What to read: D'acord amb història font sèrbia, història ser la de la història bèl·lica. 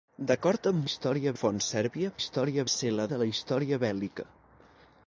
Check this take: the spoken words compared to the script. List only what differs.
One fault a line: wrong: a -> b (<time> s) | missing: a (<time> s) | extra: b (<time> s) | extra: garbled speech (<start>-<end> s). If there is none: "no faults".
no faults